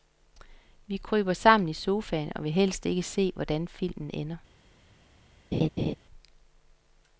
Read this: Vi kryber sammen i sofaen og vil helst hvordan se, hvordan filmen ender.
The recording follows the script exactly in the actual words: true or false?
false